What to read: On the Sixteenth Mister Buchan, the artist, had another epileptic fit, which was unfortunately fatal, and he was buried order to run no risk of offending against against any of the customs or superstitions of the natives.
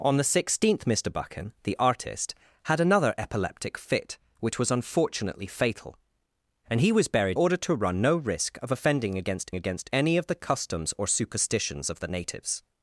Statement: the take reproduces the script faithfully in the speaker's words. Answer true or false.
true